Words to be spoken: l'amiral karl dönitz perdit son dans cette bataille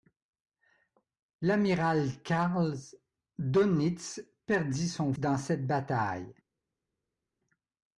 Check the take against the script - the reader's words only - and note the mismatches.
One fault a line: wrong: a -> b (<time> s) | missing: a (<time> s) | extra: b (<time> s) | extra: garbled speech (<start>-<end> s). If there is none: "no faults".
no faults